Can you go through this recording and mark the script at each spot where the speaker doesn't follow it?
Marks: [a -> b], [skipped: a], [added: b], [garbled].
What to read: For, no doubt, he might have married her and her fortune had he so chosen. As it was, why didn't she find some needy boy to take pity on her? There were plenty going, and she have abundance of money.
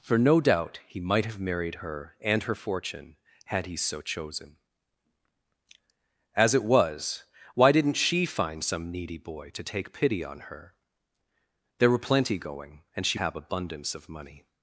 For, no doubt, he might have married her and her fortune had he so chosen. As it was, why didn't she find some needy boy to take pity on her? There were plenty going, and she have abundance of money.